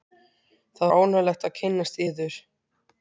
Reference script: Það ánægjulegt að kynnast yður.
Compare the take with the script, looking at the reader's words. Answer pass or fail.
pass